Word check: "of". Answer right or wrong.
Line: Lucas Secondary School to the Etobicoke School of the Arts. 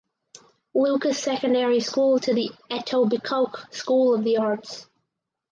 right